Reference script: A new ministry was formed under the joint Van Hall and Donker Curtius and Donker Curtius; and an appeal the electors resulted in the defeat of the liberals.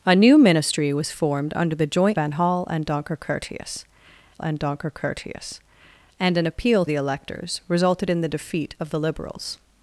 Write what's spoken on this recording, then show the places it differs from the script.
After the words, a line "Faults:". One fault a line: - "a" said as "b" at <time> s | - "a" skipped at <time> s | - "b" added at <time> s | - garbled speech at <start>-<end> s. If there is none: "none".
A new ministry was formed under the joint Van Hall and Donker Curtius and Donker Curtius; and an appeal the electors resulted in the defeat of the liberals.
Faults:
none